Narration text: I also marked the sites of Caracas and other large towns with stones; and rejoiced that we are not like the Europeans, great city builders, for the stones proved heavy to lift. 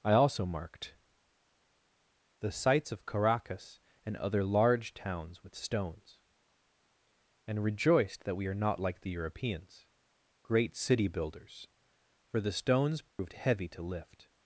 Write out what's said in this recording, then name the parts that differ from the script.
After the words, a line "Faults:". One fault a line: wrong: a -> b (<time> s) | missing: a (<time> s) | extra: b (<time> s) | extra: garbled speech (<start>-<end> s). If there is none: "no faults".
I also marked the sites of Caracas and other large towns with stones; and rejoiced that we are not like the Europeans, great city builders, for the stones proved heavy to lift.
Faults:
no faults